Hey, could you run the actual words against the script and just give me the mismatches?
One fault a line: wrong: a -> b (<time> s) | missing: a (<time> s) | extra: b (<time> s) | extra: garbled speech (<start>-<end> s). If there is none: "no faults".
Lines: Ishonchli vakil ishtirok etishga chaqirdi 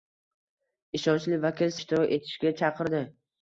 no faults